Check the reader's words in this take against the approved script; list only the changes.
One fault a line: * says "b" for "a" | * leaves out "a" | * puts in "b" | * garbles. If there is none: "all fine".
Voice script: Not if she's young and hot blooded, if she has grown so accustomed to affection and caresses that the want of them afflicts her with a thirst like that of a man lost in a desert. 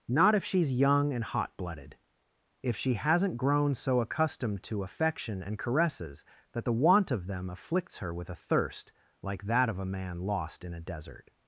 * says "hasn't" for "has"